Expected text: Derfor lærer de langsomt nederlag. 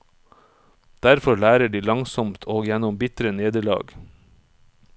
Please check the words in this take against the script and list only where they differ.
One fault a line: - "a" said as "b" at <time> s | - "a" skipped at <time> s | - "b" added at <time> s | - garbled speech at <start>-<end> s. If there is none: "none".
- "og gjennom bitre" added at 2.4 s